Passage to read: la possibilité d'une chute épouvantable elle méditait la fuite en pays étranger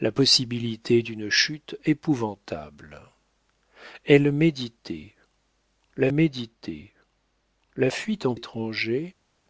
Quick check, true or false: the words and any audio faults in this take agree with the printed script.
false